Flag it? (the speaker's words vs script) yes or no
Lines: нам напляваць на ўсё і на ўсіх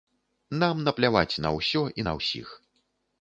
no